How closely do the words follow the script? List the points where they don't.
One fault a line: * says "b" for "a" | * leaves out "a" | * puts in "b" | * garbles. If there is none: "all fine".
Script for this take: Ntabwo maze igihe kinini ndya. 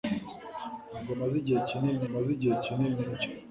* puts in "maze igihe kinini"